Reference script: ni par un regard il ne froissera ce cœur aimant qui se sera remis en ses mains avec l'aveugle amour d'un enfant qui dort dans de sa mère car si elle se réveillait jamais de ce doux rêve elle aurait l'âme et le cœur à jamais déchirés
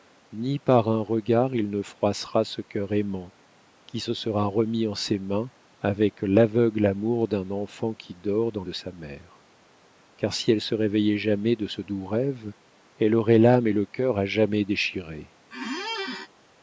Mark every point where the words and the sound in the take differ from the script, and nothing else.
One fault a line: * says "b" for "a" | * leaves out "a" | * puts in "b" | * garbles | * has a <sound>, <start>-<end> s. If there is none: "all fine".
* has a squeak, 15.5-16.3 s